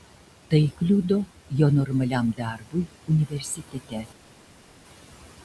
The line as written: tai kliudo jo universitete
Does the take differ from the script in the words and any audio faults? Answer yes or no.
yes